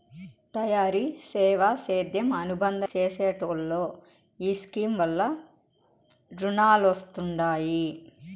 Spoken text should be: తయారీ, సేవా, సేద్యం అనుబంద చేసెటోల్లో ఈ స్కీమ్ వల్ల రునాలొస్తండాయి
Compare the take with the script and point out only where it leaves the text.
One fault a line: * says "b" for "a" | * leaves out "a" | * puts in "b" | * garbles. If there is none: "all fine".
all fine